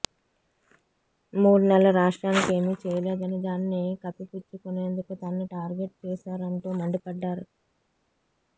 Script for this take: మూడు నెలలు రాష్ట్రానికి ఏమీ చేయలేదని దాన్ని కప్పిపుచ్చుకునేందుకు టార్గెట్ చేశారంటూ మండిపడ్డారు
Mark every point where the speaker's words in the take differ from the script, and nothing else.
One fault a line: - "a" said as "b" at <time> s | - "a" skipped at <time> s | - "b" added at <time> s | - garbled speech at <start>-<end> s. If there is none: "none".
- "తనను" added at 5.2 s